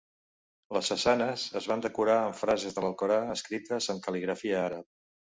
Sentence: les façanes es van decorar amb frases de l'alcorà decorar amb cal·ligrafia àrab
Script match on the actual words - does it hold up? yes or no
no